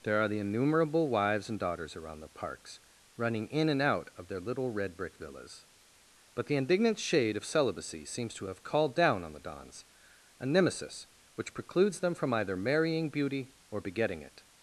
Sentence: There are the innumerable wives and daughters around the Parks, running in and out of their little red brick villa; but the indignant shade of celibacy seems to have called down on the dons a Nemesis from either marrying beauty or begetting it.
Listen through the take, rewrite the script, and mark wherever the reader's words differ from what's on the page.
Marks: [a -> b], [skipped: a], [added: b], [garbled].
There are the innumerable wives and daughters around the Parks, running in and out of their little red brick [villa; -> villas] but the indignant shade of celibacy seems to have called down on the dons a Nemesis [added: which precludes them] from either marrying beauty or begetting it.